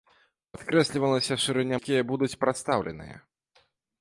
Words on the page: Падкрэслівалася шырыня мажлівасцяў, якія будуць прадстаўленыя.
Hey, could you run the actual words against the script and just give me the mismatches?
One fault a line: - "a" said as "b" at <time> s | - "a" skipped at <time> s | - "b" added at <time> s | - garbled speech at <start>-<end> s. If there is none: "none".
- "мажлівасцяў" skipped at 1.8 s